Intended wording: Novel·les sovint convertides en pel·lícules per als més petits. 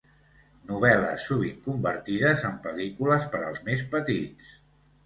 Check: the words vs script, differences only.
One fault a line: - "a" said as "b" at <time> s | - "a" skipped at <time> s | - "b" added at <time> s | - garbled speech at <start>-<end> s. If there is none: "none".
none